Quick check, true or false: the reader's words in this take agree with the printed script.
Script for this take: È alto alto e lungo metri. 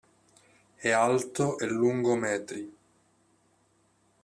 false